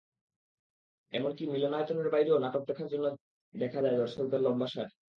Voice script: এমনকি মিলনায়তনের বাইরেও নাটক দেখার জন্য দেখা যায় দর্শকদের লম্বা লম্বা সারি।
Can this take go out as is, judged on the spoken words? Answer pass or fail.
fail